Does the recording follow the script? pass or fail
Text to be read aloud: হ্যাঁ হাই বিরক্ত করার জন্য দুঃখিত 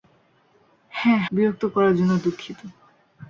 fail